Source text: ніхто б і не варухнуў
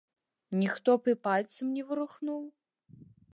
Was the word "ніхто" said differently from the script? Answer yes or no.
no